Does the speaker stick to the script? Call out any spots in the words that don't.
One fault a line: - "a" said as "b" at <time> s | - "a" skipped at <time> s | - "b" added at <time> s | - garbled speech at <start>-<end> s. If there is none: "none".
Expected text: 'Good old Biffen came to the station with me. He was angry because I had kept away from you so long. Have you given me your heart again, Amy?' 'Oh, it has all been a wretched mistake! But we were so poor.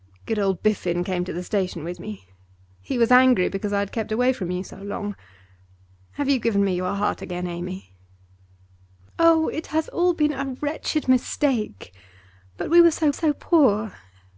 - "so" added at 13.1 s